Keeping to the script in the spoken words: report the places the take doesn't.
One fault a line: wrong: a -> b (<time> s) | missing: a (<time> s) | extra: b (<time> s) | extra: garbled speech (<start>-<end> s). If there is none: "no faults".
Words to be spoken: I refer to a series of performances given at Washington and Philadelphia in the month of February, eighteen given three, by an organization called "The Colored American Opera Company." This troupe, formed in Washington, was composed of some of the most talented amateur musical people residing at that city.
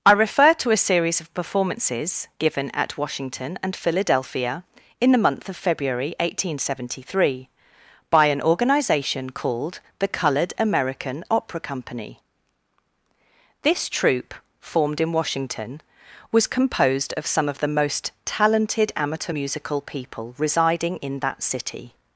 wrong: given -> seventy (6.6 s)
wrong: at -> in (21.0 s)